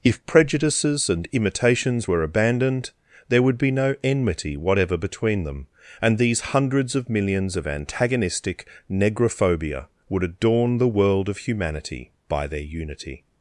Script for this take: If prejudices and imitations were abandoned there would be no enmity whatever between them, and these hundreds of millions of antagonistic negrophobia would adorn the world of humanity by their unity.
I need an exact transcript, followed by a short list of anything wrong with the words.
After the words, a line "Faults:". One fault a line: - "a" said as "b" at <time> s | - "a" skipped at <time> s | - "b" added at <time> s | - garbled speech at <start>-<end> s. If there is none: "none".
If prejudices and imitations were abandoned there would be no enmity whatever between them, and these hundreds of millions of antagonistic negrophobia would adorn the world of humanity by their unity.
Faults:
none